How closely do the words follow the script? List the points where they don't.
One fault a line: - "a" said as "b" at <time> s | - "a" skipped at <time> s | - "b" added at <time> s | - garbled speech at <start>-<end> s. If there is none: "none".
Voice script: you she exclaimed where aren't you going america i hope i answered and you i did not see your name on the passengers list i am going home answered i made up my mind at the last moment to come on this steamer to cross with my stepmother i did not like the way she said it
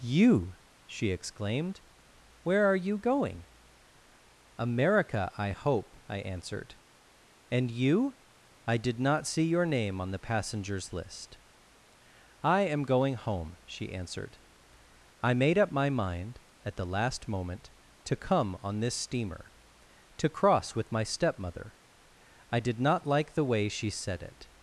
- "aren't" said as "are" at 2.6 s
- "she" added at 13.6 s